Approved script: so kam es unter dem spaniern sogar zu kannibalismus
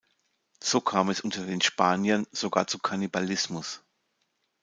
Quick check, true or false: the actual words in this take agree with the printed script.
false